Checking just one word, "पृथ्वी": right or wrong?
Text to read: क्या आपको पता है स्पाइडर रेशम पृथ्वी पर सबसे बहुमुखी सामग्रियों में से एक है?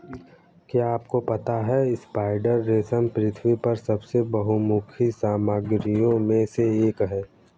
right